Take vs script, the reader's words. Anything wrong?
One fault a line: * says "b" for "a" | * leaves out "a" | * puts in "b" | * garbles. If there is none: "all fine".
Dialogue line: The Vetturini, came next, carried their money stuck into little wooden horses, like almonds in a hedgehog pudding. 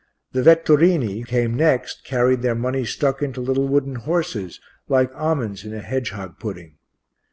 all fine